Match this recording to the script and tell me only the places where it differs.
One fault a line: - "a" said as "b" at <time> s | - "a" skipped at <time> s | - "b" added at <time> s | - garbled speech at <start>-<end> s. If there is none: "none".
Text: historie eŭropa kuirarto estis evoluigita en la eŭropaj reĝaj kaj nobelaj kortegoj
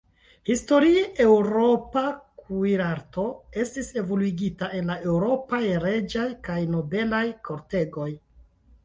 none